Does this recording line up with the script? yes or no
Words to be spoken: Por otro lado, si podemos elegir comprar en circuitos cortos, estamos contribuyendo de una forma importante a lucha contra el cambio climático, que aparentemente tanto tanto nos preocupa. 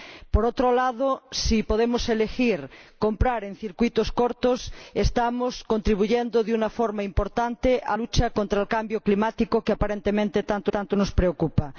yes